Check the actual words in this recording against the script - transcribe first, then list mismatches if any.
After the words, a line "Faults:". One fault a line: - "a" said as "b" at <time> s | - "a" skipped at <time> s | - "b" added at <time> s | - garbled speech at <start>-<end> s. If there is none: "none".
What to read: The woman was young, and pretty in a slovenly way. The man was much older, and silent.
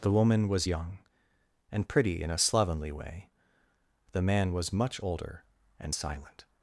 The woman was young, and pretty in a slovenly way. The man was much older, and silent.
Faults:
none